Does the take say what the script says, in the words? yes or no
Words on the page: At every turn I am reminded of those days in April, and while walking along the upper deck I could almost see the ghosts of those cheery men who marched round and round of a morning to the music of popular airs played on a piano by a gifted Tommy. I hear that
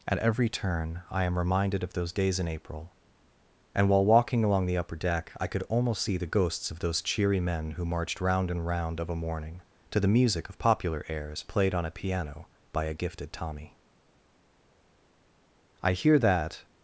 yes